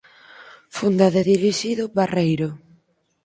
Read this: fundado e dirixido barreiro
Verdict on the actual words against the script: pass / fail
pass